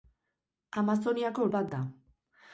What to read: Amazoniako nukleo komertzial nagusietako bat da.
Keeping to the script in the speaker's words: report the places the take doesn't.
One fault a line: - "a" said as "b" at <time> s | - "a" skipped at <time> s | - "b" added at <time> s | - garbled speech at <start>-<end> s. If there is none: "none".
- "nukleo komertzial nagusietako" skipped at 1.4 s